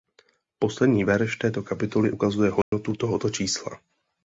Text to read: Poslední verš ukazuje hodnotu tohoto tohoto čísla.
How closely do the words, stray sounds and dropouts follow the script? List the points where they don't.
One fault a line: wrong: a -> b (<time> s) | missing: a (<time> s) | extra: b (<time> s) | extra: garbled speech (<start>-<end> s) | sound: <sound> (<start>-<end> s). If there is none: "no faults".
extra: této kapitoly (1.4 s)
sound: dropout (2.6-2.7 s)
missing: tohoto (3.3 s)